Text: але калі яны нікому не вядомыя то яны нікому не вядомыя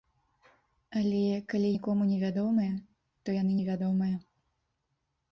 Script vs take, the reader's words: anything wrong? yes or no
yes